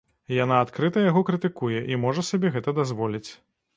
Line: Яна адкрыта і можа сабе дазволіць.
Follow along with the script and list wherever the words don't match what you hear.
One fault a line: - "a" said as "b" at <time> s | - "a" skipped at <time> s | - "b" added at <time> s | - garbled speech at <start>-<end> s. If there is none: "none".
- "яго крытыкуе" added at 1.1 s
- "гэта" added at 2.6 s